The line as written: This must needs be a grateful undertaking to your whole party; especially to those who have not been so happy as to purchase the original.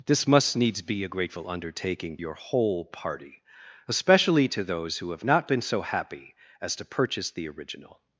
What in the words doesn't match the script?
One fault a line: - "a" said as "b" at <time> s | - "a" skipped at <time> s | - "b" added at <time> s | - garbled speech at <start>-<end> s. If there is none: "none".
- "to" skipped at 2.2 s